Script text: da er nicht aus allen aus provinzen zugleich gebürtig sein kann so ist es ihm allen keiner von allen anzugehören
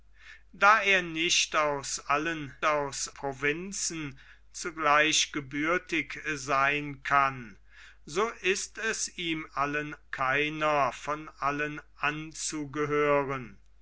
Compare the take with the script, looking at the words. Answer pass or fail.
pass